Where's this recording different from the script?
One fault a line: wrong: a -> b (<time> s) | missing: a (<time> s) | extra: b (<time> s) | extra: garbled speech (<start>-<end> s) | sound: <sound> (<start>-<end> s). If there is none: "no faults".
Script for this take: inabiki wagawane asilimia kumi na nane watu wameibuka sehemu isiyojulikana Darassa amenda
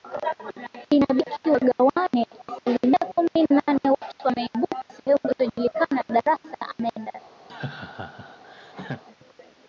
sound: laugh (7.5-9.0 s)